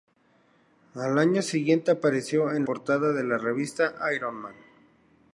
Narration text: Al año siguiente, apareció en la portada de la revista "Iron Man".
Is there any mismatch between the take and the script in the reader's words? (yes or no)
yes